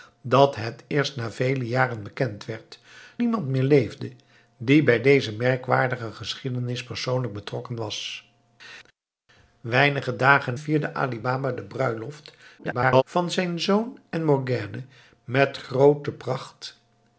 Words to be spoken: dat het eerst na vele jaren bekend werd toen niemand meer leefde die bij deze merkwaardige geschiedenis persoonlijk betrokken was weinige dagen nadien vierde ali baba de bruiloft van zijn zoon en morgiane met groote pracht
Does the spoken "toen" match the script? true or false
false